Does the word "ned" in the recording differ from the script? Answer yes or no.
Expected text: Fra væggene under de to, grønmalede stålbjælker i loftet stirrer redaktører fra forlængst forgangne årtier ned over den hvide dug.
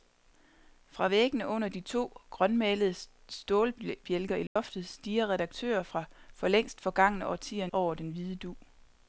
yes